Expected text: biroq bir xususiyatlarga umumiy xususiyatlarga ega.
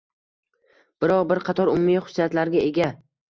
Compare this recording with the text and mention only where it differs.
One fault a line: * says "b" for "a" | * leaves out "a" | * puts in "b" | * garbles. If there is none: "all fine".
* says "qator" for "xususiyatlarga"